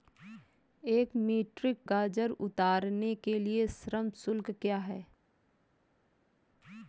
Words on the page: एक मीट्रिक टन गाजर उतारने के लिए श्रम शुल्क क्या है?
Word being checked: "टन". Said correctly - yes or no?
no